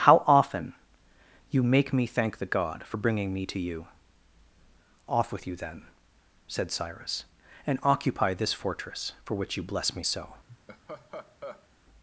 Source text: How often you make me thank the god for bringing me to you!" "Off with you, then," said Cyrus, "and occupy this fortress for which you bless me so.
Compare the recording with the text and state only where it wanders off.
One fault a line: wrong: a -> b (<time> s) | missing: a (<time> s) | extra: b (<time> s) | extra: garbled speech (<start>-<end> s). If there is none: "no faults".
no faults